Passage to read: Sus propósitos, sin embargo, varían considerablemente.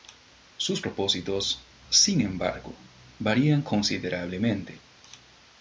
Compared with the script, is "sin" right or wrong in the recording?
right